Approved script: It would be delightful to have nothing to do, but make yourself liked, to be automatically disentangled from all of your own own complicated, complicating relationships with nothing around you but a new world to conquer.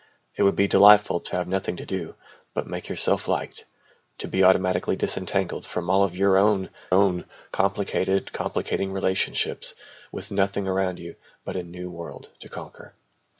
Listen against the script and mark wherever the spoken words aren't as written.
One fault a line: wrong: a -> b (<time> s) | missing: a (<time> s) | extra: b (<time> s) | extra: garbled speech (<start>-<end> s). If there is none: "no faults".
no faults